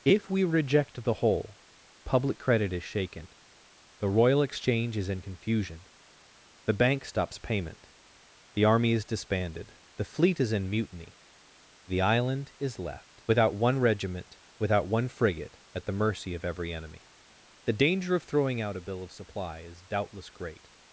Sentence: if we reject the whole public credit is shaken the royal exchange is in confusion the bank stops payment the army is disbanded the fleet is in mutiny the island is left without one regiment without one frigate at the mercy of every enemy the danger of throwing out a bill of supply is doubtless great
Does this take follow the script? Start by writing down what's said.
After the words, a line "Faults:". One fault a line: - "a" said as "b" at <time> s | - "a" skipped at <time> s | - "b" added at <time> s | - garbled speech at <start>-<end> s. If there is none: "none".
if we reject the whole public credit is shaken the royal exchange is in confusion the bank stops payment the army is disbanded the fleet is in mutiny the island is left without one regiment without one frigate at the mercy of every enemy the danger of throwing out a bill of supply is doubtless great
Faults:
none